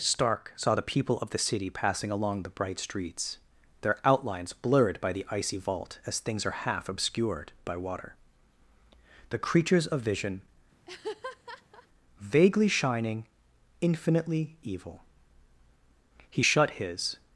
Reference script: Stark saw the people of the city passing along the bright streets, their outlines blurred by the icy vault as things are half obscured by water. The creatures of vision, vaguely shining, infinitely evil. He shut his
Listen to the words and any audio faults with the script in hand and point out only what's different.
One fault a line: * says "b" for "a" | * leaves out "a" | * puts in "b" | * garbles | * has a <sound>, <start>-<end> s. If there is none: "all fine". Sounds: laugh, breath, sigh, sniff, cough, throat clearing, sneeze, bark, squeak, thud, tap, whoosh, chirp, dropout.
* has a laugh, 10.9-11.9 s